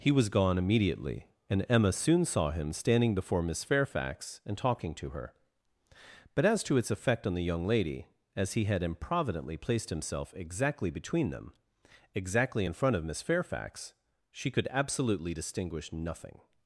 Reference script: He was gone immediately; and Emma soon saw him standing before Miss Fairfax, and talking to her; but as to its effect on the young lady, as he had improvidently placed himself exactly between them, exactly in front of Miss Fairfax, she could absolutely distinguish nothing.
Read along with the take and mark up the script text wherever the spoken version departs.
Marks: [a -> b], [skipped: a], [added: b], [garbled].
He was gone immediately; and Emma soon saw him standing before Miss Fairfax, and talking to her; but as to its effect on the young lady, as he had improvidently placed himself exactly between them, exactly in front of Miss Fairfax, she could absolutely distinguish nothing.